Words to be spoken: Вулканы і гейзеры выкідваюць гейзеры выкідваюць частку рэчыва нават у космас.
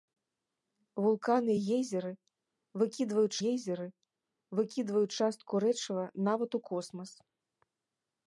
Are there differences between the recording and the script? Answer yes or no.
no